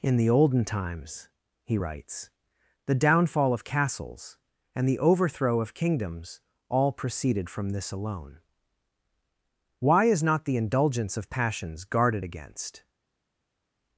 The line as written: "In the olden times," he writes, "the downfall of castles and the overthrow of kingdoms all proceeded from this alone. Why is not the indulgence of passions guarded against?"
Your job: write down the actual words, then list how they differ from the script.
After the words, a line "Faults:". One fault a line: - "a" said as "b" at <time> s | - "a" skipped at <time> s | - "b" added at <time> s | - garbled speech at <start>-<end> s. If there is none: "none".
"In the olden times," he writes, "the downfall of castles and the overthrow of kingdoms all proceeded from this alone. Why is not the indulgence of passions guarded against?"
Faults:
none